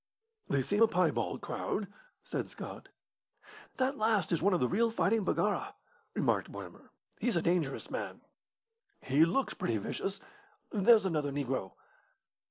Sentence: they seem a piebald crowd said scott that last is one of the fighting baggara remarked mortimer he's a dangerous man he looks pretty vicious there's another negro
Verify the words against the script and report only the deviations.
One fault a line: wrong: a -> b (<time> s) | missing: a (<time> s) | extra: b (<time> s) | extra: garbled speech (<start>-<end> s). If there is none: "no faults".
extra: real (4.7 s)